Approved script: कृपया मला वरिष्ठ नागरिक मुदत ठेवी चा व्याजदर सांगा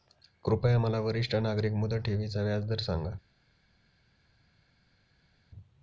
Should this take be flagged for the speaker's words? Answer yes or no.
no